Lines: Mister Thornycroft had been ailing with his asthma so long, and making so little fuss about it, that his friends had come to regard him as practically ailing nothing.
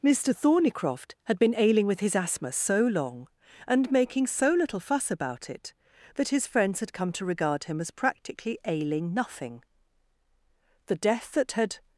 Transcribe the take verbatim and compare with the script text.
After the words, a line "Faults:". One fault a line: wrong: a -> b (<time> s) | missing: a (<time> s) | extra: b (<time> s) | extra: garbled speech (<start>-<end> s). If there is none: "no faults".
Mister Thornycroft had been ailing with his asthma so long, and making so little fuss about it, that his friends had come to regard him as practically ailing nothing. The death that had
Faults:
extra: The death that had (10.8 s)